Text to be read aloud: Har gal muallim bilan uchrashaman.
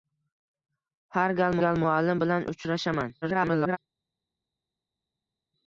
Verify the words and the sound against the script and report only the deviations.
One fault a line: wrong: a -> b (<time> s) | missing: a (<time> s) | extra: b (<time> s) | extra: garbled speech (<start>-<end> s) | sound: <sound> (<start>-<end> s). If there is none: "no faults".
extra: gal (1.6 s)
extra: garbled speech (3.2-3.8 s)